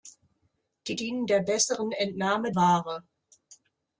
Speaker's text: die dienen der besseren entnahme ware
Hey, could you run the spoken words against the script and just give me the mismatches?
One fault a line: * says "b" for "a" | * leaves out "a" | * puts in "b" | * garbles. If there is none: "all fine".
all fine